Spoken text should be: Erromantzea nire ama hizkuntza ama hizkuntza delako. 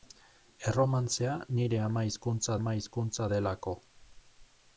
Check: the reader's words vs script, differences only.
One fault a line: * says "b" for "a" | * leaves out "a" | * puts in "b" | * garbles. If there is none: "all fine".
all fine